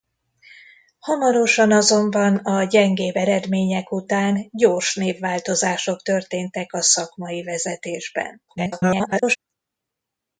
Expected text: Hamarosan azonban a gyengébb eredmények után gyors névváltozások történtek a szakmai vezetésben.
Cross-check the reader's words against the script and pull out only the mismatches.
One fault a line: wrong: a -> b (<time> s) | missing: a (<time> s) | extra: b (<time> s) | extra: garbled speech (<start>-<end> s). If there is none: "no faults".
extra: garbled speech (8.5-9.4 s)